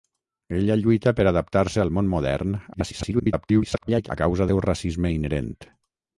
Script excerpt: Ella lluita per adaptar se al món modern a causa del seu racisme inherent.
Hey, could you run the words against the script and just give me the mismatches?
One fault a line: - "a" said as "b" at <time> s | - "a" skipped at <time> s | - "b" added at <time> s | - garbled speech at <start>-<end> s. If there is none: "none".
- garbled speech at 2.7-4.1 s
- "del" skipped at 4.5 s